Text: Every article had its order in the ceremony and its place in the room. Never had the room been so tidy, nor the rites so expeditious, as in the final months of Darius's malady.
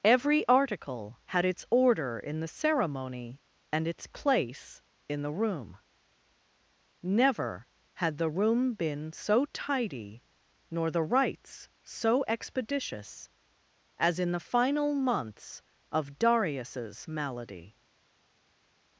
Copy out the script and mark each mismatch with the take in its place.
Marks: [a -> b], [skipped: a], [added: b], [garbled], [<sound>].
Every article had its order in the ceremony and its place in the room. Never had the room been so tidy, nor the rites so expeditious, as in the final months of Darius's malady.